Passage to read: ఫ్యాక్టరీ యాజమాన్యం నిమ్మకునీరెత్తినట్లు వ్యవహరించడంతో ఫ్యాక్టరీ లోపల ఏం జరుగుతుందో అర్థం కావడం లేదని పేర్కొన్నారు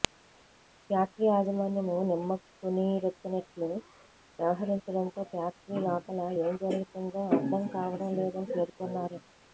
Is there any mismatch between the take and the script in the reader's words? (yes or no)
no